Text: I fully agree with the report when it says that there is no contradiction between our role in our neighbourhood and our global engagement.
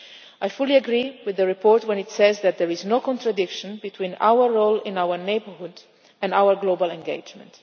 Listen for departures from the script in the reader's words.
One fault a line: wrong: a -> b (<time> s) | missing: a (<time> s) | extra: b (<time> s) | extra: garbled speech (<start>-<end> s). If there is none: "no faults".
no faults